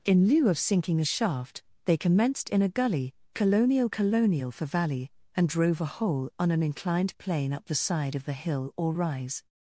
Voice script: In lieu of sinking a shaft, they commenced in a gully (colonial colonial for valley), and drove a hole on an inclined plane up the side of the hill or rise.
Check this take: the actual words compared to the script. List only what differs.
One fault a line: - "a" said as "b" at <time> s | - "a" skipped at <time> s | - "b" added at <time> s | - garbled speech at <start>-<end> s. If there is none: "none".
none